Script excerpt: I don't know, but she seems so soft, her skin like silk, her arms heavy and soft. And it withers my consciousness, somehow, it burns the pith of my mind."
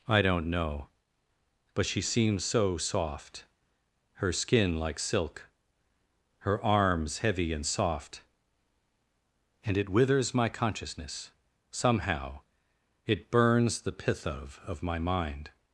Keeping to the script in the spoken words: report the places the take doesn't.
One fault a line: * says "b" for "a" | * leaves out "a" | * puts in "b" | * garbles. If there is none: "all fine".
* puts in "of"